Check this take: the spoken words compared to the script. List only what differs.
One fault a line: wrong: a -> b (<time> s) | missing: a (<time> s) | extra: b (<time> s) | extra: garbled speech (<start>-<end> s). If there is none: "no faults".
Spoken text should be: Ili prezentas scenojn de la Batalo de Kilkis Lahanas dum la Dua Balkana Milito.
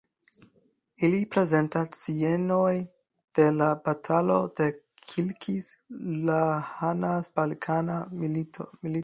missing: dum la Dua (7.3 s)